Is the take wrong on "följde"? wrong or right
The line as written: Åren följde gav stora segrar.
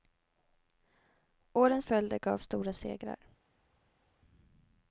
right